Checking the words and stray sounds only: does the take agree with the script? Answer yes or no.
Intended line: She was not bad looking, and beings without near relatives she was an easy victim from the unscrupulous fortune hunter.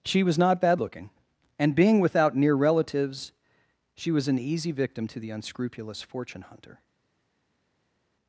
no